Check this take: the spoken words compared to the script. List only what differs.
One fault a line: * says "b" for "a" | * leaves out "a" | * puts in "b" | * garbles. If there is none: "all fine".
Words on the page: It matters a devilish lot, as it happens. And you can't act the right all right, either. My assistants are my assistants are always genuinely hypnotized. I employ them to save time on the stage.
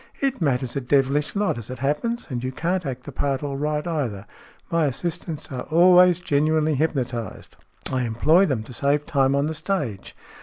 * says "part" for "right"
* leaves out "my assistants are"